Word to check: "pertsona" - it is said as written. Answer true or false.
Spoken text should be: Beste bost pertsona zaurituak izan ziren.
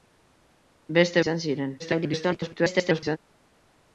false